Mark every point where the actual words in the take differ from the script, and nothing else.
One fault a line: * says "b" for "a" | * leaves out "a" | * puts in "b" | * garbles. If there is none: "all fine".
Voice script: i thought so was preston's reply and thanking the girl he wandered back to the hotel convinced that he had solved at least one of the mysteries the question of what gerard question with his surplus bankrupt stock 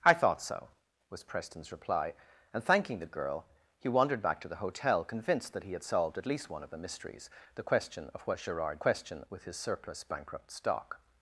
all fine